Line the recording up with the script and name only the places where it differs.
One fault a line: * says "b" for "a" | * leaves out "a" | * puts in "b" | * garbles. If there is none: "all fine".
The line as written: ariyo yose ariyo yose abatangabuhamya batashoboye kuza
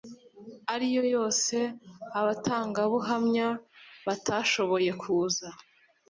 * leaves out "ariyo yose"